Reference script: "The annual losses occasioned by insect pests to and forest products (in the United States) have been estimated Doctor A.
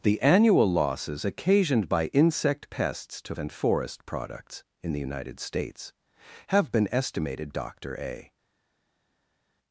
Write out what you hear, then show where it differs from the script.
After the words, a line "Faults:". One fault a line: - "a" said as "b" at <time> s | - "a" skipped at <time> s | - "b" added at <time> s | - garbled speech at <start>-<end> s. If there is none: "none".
"The annual losses occasioned by insect pests to and forest products (in the United States) have been estimated Doctor A.
Faults:
none